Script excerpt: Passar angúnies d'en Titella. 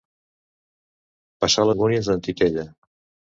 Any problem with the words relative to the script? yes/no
no